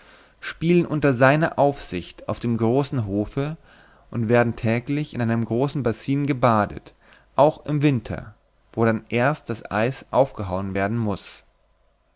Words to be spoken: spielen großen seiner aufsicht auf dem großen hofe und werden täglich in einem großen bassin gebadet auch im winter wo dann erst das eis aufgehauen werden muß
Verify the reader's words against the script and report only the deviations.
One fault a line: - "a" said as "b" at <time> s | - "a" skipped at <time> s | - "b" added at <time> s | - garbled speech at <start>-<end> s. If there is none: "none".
- "großen" said as "unter" at 0.9 s